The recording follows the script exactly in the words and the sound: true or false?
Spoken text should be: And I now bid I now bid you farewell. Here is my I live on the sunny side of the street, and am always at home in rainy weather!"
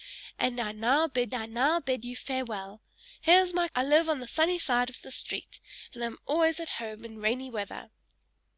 true